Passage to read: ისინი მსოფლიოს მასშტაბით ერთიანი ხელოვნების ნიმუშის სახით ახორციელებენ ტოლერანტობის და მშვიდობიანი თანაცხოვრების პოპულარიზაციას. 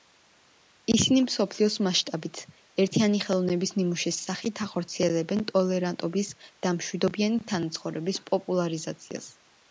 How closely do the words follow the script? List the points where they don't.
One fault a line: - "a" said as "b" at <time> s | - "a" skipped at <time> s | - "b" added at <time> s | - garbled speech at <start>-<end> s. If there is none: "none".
none